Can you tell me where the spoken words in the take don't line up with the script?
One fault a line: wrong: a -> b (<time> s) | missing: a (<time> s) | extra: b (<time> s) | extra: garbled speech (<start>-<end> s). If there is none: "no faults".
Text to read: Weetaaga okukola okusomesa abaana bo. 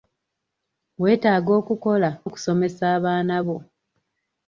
no faults